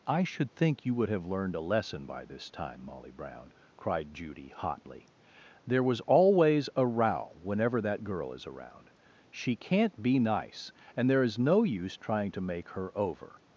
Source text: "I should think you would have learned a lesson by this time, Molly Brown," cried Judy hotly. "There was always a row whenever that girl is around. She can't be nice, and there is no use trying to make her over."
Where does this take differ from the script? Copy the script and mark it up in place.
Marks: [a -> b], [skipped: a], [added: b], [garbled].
"I should think you would have learned a lesson by this time, Molly Brown," cried Judy hotly. "There was always a row whenever that girl is around. She can't be nice, and there is no use trying to make her over."